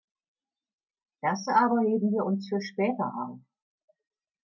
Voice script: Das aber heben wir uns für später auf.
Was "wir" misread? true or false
false